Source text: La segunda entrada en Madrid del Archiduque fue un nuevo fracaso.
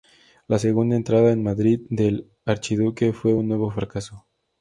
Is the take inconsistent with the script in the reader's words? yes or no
no